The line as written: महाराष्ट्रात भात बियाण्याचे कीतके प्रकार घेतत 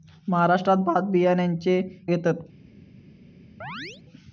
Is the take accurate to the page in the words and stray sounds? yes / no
no